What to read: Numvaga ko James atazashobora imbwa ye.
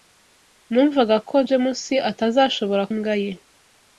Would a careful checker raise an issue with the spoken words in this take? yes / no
no